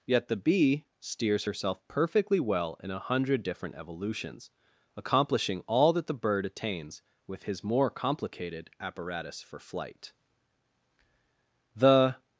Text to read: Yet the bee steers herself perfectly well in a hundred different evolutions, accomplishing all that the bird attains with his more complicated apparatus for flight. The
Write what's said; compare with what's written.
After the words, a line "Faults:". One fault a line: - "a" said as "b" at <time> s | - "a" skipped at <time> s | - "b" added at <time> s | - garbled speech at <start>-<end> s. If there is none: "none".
Yet the bee steers herself perfectly well in a hundred different evolutions, accomplishing all that the bird attains with his more complicated apparatus for flight. The
Faults:
none